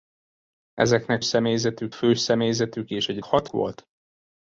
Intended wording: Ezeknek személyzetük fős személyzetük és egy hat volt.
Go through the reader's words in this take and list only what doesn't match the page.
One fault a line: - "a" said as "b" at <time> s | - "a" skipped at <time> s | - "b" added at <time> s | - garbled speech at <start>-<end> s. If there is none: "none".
none